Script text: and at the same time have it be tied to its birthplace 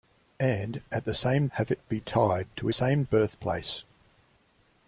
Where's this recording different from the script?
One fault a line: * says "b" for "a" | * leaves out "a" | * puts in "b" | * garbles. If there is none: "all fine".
* leaves out "time"
* says "same" for "its"